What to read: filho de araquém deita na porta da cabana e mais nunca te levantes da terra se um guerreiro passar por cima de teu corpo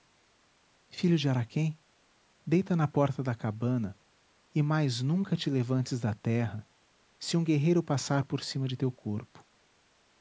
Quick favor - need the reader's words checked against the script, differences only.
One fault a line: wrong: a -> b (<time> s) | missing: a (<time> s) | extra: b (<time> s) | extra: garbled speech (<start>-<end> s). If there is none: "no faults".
no faults